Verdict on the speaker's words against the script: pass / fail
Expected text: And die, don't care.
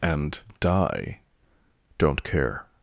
pass